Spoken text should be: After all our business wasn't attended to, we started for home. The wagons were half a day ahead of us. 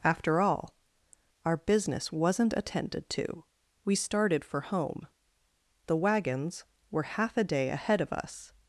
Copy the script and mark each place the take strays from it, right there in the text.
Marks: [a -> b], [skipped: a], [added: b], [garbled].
After all our business wasn't attended to, we started for home. The wagons were half a day ahead of us.